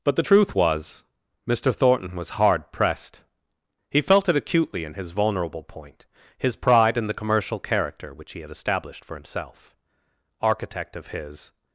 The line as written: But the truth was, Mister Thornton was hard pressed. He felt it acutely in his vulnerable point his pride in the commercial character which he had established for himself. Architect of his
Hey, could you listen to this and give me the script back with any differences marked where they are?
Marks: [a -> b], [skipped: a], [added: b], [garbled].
But the truth was, Mister Thornton was hard pressed. He felt it acutely in his vulnerable point his pride in the commercial character which he had established for himself. Architect of his